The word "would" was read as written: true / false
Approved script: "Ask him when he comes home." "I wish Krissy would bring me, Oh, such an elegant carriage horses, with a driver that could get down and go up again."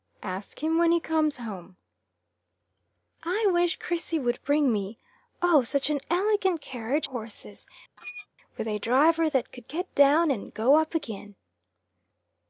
true